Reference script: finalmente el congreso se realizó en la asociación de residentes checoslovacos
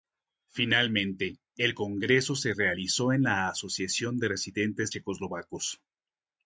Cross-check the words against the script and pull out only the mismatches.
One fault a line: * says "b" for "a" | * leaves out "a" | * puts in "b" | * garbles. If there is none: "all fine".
all fine